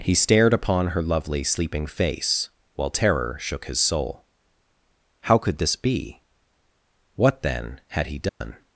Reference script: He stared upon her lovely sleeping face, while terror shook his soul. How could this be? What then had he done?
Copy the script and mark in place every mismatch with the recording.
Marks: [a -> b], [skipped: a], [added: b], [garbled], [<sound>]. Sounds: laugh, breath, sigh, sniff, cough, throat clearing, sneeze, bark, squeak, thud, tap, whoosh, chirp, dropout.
He stared upon her lovely sleeping face, while terror shook his soul. How could this be? What then had he done? [dropout]